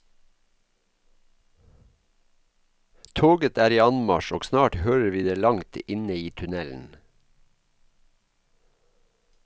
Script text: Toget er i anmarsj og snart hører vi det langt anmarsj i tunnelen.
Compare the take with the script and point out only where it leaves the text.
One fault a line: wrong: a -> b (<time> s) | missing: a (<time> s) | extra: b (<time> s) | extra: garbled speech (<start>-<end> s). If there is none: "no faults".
wrong: anmarsj -> inne (5.9 s)